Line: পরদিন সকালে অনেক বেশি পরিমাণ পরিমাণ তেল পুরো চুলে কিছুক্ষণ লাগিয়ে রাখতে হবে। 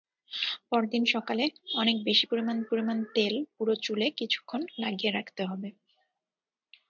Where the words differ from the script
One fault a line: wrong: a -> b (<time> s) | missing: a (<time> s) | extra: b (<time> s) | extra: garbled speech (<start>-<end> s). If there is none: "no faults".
no faults